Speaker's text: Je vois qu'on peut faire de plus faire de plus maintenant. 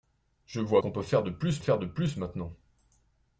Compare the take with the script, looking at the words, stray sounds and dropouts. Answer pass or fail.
pass